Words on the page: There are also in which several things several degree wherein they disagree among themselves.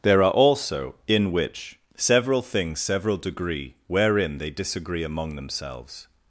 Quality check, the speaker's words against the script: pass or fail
pass